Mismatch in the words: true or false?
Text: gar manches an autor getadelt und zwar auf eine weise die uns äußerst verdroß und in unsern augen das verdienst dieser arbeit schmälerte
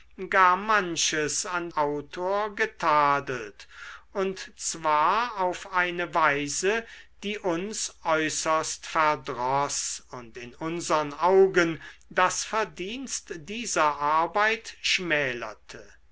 false